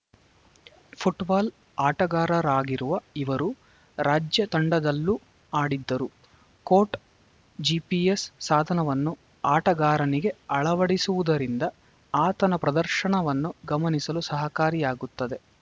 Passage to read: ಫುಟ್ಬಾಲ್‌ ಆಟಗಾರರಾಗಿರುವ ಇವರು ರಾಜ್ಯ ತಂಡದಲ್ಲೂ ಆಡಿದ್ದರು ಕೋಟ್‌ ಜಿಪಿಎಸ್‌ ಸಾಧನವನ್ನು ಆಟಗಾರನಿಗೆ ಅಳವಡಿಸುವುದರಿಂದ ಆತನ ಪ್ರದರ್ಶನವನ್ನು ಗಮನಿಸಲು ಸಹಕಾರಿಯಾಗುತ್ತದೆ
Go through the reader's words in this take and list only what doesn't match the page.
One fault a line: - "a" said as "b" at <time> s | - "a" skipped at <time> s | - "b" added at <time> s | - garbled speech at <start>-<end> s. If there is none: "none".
none